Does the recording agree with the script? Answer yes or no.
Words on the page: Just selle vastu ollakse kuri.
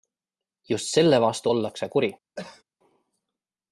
yes